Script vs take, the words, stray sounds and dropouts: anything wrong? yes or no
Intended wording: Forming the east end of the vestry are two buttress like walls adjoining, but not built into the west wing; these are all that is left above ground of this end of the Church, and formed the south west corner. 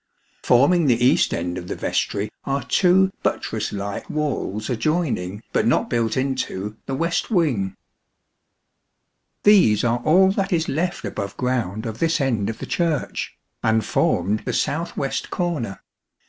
no